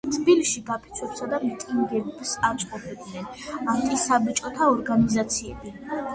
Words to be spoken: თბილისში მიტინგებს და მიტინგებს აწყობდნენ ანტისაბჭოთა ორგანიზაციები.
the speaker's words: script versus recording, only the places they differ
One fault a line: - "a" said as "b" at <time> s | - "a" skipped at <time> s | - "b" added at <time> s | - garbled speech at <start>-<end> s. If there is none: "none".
- "მიტინგებს" said as "გაფიცვებსა" at 0.7 s